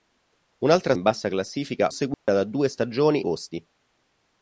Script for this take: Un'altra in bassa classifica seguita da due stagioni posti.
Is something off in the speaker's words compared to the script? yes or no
no